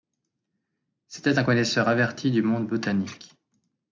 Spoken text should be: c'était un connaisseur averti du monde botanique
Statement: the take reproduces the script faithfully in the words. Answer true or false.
true